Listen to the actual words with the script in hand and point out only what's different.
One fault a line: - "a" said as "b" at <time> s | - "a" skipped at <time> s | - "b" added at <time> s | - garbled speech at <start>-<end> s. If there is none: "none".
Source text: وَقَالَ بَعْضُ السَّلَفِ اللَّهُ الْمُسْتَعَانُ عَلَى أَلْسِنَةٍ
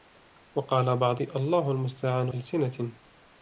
- "السَّلَفِ" skipped at 1.2 s
- "عَلَى" skipped at 2.3 s